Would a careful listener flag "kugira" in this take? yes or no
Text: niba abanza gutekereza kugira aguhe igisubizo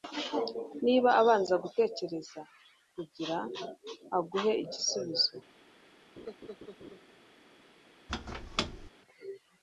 no